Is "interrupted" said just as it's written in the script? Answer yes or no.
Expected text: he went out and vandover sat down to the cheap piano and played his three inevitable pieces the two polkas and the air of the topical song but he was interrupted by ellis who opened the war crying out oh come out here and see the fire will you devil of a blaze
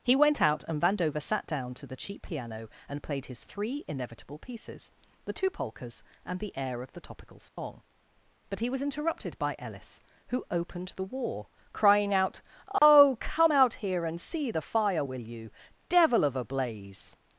yes